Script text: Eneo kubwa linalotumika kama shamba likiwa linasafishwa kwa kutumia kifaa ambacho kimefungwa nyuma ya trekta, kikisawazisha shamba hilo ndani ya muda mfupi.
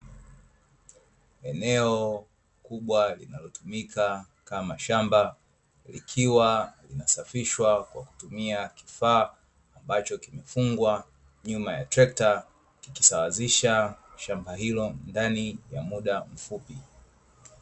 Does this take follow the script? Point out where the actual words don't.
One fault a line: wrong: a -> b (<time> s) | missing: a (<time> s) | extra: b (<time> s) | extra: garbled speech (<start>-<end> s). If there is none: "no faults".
no faults